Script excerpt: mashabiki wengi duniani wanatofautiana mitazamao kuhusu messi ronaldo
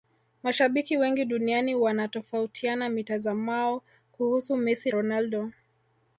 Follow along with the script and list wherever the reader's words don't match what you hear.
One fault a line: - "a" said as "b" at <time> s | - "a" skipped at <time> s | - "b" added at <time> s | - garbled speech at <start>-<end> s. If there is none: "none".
none